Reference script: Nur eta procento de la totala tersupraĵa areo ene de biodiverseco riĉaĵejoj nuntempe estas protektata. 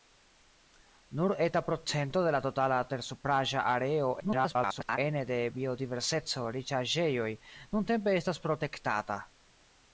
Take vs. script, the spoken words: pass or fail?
fail